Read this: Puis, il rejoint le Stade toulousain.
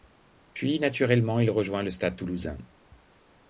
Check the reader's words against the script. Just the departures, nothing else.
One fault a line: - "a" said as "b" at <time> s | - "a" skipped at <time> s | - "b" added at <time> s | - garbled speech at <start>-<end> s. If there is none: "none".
- "naturellement" added at 0.8 s